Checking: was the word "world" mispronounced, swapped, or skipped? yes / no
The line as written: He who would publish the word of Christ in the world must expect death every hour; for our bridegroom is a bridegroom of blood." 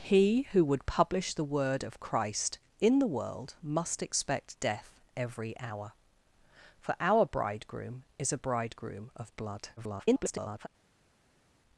no